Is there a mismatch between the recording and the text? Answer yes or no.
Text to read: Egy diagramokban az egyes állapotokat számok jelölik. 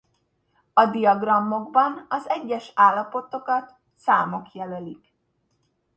yes